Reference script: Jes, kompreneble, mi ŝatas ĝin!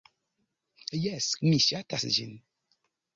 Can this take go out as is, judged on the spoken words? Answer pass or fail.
fail